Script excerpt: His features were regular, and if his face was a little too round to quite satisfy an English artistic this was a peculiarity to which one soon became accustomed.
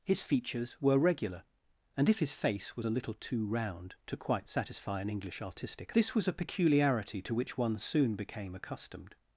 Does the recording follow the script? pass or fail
pass